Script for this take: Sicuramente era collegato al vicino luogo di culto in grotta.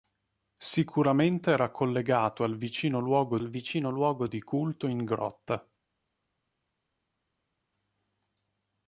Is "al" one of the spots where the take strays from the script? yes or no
no